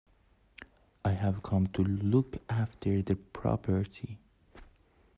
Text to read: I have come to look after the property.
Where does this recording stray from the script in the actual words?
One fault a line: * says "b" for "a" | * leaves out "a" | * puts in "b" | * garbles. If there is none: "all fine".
all fine